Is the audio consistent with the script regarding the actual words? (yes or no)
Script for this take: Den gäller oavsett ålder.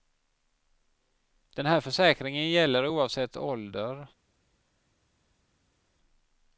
no